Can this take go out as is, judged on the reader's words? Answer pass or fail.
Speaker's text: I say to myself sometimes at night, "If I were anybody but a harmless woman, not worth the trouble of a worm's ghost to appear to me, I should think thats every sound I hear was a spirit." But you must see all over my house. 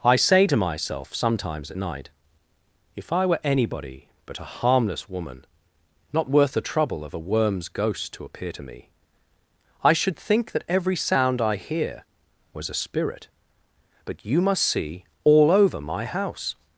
fail